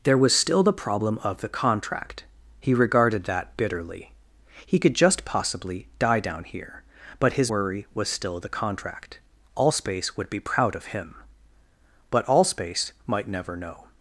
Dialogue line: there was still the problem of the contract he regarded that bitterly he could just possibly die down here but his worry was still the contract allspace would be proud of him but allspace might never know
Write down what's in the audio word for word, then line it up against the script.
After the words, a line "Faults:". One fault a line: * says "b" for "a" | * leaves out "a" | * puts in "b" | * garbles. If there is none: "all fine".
there was still the problem of the contract he regarded that bitterly he could just possibly die down here but his worry was still the contract allspace would be proud of him but allspace might never know
Faults:
all fine